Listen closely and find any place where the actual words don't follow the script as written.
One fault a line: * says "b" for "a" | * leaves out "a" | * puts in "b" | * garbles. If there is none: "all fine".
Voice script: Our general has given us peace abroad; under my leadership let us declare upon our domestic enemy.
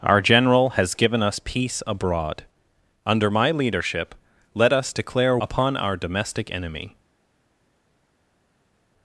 all fine